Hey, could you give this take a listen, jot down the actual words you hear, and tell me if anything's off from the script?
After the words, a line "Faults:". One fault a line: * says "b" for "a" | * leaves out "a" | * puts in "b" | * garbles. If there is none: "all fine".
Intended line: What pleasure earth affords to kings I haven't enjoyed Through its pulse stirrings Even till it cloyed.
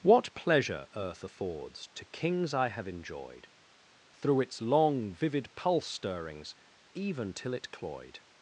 What pleasure earth affords to kings I have enjoyed Through its long vivid pulse stirrings Even till it cloyed.
Faults:
* says "have" for "haven't"
* puts in "long vivid"